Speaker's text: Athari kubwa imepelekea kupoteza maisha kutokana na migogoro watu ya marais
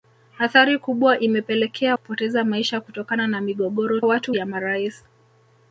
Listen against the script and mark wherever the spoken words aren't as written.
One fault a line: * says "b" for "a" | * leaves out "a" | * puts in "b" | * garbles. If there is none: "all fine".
all fine